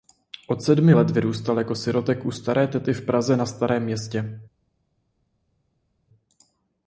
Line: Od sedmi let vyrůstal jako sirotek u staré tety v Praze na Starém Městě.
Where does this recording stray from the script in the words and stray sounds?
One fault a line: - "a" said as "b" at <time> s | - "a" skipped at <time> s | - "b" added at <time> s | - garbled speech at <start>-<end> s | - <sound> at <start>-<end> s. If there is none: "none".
none